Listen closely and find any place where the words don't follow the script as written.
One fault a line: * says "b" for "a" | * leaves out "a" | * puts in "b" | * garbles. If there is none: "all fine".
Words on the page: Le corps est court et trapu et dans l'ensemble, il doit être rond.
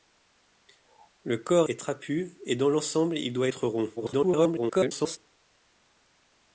* leaves out "est court"
* garbles